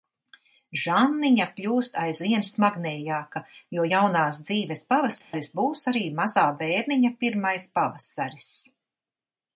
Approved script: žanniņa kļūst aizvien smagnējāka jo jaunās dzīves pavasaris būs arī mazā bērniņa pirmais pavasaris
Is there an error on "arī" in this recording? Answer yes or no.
no